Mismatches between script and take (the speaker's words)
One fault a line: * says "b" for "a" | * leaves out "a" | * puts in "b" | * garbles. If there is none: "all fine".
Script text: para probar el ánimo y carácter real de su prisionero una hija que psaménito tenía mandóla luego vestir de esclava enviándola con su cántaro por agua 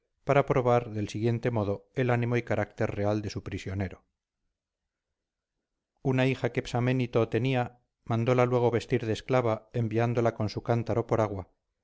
* puts in "del siguiente modo"